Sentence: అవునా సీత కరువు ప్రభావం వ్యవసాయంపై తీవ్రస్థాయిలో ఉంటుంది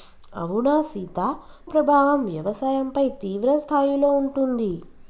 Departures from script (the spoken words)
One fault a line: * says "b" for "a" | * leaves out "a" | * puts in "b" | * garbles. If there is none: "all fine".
* leaves out "కరువు"